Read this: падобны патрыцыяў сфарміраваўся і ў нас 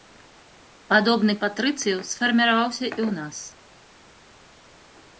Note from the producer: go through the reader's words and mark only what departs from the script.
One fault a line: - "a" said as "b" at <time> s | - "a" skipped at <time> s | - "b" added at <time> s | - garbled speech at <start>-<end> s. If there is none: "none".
none